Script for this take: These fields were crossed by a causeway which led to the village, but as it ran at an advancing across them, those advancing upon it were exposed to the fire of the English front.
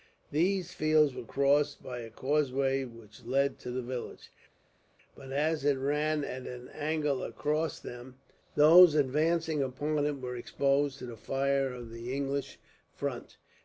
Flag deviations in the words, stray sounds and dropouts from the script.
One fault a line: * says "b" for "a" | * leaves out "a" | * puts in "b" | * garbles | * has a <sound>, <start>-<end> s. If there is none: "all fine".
* says "angle" for "advancing"